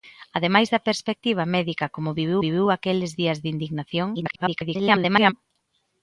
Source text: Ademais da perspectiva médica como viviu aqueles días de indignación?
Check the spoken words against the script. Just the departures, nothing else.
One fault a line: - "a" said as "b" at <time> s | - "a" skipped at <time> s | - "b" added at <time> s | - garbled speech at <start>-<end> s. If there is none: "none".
- "viviu" added at 2.4 s
- garbled speech at 4.1-5.3 s